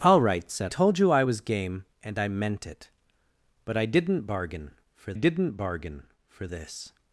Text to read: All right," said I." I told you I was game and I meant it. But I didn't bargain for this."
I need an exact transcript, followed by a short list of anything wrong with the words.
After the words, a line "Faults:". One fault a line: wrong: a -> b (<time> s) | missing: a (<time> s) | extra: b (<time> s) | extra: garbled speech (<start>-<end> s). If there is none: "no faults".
All right," said told you I was game and I meant it. But I didn't bargain for didn't bargain for this."
Faults:
missing: I I (0.7 s)
extra: didn't bargain for (5.1 s)